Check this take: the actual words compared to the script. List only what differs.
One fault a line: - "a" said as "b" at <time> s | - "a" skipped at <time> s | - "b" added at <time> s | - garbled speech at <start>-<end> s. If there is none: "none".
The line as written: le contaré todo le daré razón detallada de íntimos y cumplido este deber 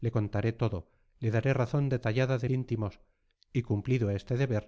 none